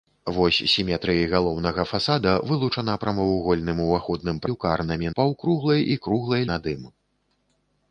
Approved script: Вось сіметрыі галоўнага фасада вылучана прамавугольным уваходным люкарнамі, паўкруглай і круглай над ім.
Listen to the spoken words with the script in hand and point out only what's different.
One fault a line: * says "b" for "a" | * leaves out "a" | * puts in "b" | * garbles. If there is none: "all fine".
all fine